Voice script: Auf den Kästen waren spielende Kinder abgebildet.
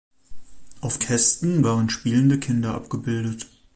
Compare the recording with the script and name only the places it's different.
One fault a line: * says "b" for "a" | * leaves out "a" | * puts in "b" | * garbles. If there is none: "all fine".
* leaves out "den"